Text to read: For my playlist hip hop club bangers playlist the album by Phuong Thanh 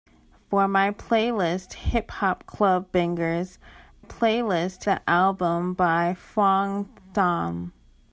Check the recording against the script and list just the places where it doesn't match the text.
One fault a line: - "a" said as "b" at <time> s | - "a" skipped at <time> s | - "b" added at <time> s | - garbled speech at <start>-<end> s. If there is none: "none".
none